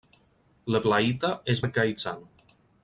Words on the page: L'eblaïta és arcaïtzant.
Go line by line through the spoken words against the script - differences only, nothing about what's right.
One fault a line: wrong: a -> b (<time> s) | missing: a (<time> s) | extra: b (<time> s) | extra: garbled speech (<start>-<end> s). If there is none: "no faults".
no faults